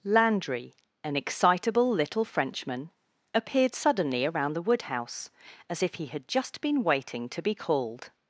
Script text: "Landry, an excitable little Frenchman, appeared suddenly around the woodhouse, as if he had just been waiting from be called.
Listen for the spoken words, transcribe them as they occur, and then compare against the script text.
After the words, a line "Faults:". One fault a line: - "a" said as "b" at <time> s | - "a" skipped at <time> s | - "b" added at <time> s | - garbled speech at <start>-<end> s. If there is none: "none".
"Landry, an excitable little Frenchman, appeared suddenly around the woodhouse, as if he had just been waiting to be called.
Faults:
- "from" said as "to" at 7.3 s